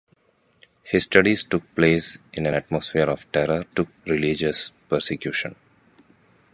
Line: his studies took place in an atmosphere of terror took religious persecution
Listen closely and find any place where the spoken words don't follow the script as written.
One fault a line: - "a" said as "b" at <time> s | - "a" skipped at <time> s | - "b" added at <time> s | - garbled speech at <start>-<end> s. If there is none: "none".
none